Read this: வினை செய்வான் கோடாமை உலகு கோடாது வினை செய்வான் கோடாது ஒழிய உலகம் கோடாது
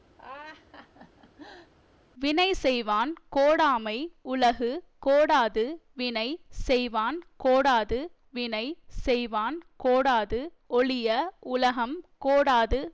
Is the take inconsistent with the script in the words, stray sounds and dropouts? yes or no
yes